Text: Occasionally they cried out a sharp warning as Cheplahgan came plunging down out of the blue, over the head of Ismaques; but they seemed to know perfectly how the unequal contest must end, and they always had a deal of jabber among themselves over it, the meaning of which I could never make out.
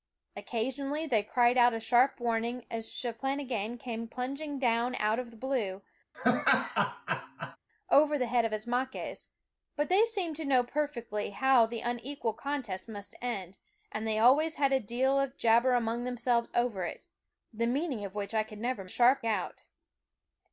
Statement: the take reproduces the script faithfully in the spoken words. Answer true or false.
false